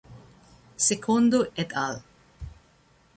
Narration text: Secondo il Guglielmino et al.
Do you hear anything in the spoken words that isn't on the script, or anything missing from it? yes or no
yes